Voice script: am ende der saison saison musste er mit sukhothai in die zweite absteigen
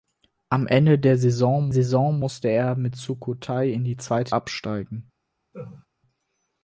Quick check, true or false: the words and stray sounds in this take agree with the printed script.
false